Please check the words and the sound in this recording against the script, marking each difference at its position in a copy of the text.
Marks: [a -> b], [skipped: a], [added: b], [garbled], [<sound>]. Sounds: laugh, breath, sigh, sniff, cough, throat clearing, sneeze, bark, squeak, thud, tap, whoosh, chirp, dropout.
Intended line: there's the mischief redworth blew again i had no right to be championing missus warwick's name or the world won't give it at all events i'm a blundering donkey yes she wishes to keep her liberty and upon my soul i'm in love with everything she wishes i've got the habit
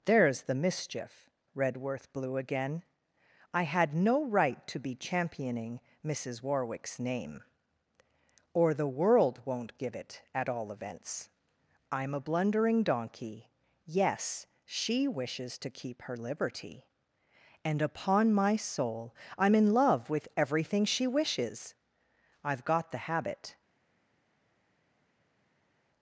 there's the mischief redworth blew again i had no right to be championing missus warwick's name or the world won't give it at all events i'm a blundering donkey yes she wishes to keep her liberty and upon my soul i'm in love with everything she wishes i've got the habit